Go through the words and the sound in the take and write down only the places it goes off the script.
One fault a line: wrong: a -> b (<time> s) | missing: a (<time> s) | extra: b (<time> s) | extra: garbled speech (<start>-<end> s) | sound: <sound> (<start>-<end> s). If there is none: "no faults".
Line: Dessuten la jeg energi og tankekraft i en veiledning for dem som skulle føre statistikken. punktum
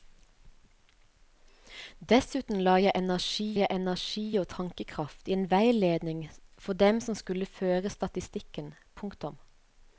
extra: jeg energi (3.6 s)